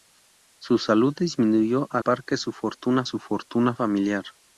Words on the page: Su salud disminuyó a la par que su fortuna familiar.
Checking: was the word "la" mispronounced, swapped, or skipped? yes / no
yes